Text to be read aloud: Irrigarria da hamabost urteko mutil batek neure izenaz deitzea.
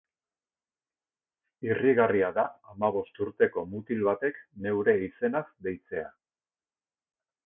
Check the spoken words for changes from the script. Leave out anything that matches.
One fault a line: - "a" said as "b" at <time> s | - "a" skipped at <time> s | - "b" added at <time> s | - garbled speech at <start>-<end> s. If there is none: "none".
none